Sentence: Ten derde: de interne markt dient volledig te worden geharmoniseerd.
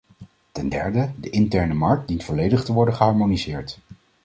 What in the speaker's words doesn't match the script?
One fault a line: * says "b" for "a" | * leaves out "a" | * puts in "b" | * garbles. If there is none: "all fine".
all fine